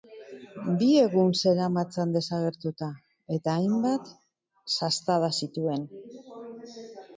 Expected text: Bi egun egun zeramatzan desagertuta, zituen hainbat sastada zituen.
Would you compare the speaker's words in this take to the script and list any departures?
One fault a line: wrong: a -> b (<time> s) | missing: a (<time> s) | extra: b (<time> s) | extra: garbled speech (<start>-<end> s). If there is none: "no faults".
missing: egun (1.3 s)
wrong: zituen -> eta (3.4 s)